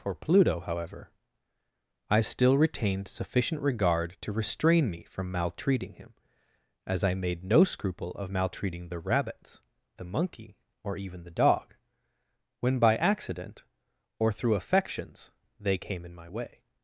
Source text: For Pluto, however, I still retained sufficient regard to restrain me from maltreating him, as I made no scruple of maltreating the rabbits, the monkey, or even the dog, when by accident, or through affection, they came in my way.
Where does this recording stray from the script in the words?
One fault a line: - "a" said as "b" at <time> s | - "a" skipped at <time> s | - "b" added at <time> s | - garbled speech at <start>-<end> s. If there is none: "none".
- "affection" said as "affections" at 14.5 s